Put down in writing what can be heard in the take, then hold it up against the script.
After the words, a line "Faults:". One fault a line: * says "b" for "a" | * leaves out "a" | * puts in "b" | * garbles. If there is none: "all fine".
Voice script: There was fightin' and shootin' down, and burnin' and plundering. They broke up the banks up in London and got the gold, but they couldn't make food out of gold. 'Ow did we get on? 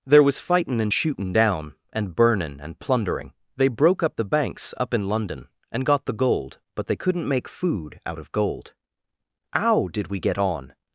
There was fightin' and shootin' down, and burnin' and plundering. They broke up the banks up in London and got the gold, but they couldn't make food out of gold. 'Ow did we get on?
Faults:
all fine